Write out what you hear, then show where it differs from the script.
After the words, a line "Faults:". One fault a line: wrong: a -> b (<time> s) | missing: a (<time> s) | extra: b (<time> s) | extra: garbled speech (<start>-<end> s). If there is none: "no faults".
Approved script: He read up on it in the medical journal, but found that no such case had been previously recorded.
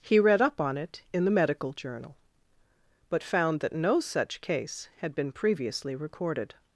He read up on it in the medical journal, but found that no such case had been previously recorded.
Faults:
no faults